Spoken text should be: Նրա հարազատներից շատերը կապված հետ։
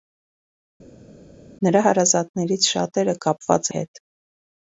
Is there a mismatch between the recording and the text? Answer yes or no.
no